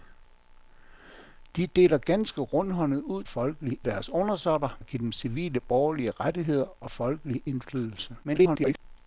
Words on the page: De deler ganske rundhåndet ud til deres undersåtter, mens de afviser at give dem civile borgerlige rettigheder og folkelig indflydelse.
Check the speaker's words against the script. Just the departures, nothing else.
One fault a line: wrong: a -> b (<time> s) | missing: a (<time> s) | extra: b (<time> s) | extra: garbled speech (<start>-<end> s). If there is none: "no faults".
wrong: til -> folkelig (3.3 s)
missing: mens de afviser (4.8 s)
extra: garbled speech (8.2-8.8 s)